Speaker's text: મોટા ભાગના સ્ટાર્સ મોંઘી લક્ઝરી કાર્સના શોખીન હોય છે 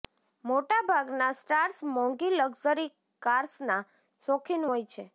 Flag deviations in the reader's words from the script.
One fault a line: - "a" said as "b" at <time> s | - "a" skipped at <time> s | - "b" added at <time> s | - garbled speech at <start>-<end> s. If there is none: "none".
none